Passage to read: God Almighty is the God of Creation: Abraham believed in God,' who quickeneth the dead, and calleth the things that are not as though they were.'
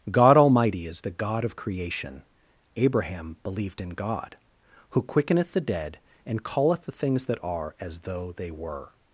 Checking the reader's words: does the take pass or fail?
fail